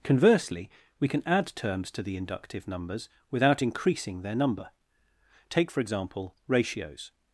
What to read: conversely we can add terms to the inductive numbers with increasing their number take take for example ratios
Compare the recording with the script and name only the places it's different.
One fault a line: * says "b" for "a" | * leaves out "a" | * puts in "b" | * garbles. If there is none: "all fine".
* says "without" for "with"
* leaves out "take"